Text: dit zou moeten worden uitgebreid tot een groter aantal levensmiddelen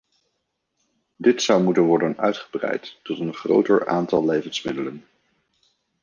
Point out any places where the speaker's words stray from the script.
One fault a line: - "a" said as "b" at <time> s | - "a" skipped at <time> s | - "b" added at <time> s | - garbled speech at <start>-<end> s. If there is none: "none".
none